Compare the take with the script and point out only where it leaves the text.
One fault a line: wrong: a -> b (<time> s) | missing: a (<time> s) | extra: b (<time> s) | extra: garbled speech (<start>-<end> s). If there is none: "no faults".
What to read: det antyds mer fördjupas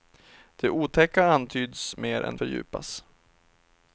extra: otäcka (0.7 s)
extra: än (2.2 s)